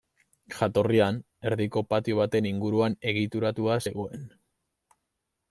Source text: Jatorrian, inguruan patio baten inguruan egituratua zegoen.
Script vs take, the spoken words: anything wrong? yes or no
yes